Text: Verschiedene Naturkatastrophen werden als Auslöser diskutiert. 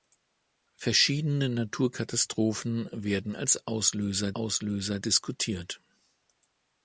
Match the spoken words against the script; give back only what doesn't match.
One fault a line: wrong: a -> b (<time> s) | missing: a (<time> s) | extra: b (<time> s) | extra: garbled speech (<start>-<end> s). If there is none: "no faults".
extra: Auslöser (4.4 s)